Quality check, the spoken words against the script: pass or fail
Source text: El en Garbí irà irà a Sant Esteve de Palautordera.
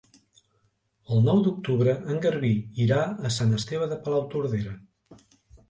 fail